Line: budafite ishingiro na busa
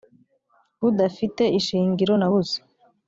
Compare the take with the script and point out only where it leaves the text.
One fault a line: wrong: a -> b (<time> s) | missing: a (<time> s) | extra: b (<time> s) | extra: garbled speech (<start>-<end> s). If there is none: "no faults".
no faults